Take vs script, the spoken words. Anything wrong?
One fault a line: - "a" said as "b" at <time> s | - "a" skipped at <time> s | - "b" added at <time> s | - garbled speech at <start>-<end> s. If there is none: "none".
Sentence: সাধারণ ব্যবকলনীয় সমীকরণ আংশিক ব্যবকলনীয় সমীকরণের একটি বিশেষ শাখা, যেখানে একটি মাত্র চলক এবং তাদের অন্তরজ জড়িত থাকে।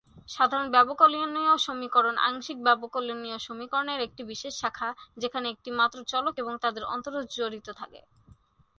none